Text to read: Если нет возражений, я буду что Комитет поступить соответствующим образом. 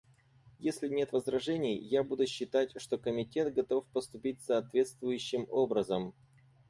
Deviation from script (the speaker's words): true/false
true